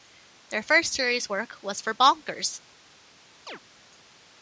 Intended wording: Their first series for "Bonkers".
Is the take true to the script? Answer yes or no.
no